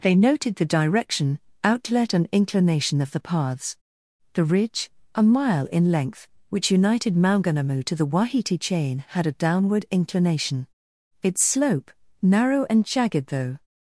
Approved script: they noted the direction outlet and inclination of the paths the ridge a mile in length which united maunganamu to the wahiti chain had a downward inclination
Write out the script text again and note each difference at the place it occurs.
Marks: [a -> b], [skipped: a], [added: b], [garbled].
they noted the direction outlet and inclination of the paths the ridge a mile in length which united maunganamu to the wahiti chain had a downward inclination [added: its slope narrow and jagged though]